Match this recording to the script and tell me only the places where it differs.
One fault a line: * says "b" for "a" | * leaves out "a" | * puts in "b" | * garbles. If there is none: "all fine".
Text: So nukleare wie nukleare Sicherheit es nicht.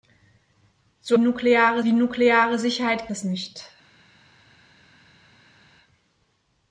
all fine